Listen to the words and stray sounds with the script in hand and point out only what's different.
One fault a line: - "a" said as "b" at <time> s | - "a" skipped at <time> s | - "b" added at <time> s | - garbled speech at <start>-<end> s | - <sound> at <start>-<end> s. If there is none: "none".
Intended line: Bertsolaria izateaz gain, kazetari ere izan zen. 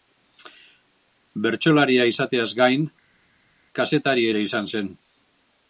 none